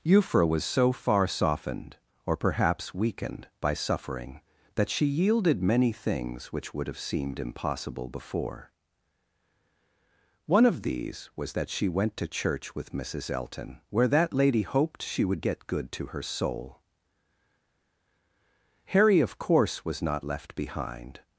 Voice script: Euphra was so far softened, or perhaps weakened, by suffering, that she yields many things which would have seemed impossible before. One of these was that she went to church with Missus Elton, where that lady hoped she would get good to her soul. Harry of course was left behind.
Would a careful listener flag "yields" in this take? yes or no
yes